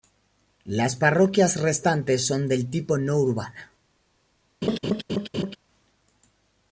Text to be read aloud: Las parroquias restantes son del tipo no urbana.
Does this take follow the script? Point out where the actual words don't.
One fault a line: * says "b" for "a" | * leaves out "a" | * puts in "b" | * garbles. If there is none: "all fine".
all fine